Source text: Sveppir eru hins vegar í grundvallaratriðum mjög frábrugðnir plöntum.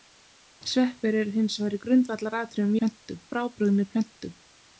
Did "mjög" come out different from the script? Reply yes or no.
yes